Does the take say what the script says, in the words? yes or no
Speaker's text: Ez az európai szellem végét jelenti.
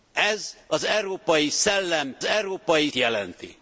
no